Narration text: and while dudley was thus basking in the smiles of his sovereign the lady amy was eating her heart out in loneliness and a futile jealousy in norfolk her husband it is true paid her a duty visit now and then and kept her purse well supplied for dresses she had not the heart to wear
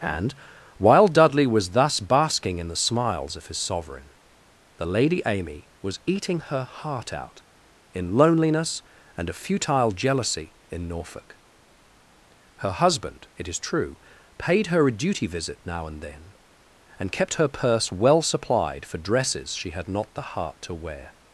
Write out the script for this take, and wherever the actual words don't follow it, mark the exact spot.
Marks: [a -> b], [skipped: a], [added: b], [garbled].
and while dudley was thus basking in the smiles of his sovereign the lady amy was eating her heart out in loneliness and a futile jealousy in norfolk her husband it is true paid her a duty visit now and then and kept her purse well supplied for dresses she had not the heart to wear